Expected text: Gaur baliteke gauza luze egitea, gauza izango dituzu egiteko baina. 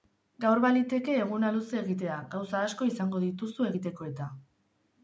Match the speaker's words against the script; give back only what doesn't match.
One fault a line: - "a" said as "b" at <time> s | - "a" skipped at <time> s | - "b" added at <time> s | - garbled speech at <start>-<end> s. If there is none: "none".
- "gauza" said as "eguna" at 1.2 s
- "asko" added at 2.7 s
- "baina" said as "eta" at 4.1 s